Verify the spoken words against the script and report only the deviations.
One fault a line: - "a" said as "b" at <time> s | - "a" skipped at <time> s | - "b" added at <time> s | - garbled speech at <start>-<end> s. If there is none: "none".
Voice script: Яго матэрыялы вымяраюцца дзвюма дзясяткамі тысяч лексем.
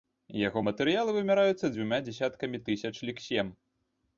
none